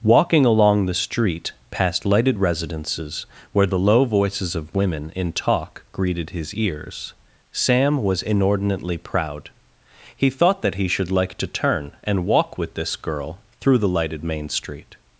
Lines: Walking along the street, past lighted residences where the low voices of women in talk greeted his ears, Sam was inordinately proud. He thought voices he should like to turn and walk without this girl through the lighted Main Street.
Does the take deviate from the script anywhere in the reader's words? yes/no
yes